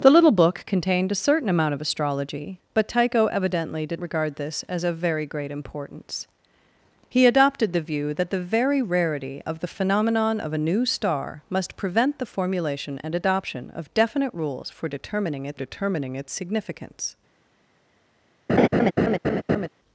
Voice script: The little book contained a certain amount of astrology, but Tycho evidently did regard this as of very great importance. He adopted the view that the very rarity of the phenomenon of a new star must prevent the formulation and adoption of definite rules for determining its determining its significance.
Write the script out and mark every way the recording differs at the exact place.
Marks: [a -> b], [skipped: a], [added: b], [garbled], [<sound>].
The little book contained a certain amount of astrology, but Tycho evidently did regard this as of very great importance. He adopted the view that the very rarity of the phenomenon of a new star must prevent the formulation and adoption of definite rules for determining its determining its significance. [laugh]